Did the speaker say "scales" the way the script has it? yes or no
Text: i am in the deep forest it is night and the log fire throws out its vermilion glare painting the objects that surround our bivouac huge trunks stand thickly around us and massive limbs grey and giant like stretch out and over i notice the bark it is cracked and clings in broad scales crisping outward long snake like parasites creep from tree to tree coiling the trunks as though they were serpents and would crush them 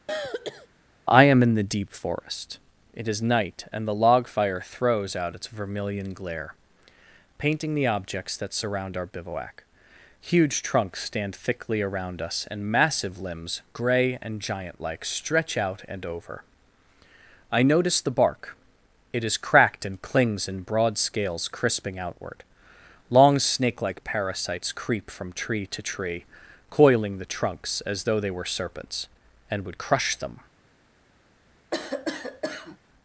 yes